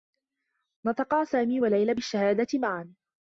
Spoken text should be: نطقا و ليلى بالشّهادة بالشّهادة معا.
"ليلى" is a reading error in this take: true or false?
false